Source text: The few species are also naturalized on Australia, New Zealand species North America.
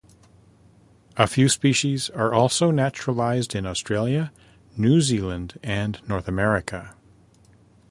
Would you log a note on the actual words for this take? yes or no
yes